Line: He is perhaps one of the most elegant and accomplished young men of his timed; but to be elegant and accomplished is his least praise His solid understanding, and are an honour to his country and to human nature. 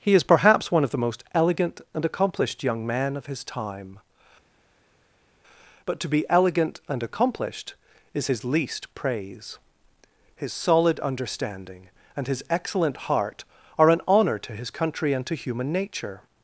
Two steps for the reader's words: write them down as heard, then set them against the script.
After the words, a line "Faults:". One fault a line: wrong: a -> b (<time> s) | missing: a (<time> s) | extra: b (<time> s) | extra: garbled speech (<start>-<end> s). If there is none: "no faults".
He is perhaps one of the most elegant and accomplished young men of his time; but to be elegant and accomplished is his least praise His solid understanding, and his excellent heart, are an honour to his country and to human nature.
Faults:
wrong: timed -> time (3.4 s)
extra: his excellent heart (12.3 s)